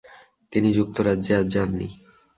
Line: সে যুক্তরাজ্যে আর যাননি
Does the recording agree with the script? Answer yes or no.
no